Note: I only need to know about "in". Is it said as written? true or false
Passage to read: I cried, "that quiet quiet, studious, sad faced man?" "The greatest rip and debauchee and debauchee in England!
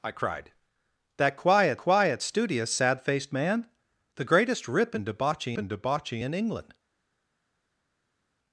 true